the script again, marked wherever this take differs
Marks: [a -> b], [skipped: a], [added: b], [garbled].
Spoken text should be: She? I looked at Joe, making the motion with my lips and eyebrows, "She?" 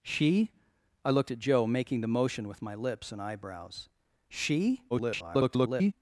She? I looked at Joe, making the motion with my lips and eyebrows, "She?" [garbled]